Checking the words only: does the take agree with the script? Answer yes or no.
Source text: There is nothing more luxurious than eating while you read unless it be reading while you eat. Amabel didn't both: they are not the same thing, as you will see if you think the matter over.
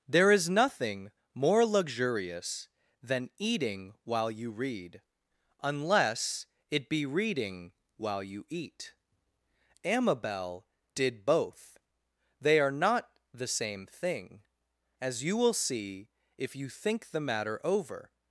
no